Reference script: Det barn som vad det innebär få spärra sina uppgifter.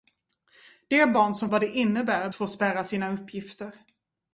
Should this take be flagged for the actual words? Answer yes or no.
no